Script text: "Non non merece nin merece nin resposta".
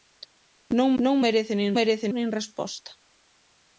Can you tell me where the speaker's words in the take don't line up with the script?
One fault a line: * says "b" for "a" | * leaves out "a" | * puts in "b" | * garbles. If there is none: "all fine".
all fine